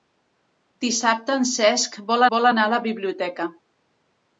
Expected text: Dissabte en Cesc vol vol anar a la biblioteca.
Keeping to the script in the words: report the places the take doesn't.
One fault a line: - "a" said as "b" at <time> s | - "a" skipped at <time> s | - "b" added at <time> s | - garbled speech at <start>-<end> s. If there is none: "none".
none